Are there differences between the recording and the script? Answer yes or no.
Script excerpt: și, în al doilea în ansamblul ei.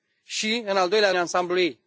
no